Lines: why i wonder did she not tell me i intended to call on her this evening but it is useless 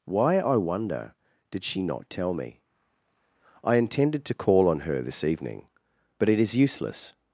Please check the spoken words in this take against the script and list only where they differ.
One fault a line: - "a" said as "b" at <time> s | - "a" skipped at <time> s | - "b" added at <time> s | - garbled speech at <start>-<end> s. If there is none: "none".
none